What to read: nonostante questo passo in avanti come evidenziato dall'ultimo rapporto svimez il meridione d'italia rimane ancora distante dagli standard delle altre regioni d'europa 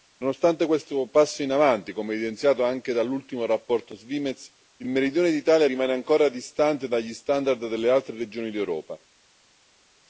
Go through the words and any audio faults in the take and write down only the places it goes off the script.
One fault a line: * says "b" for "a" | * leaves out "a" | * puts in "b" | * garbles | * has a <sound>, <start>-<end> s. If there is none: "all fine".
* puts in "anche"